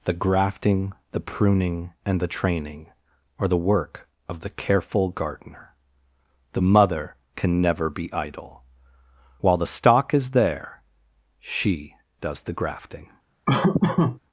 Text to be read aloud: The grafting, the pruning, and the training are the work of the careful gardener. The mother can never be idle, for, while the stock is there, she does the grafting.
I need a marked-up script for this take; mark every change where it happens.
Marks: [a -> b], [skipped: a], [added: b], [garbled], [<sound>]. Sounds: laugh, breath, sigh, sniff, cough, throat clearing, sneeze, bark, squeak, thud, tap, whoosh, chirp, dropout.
The grafting, the pruning, and the training are the work of the careful gardener. The mother can never be idle, [skipped: for,] while the stock is there, she does the grafting. [laugh]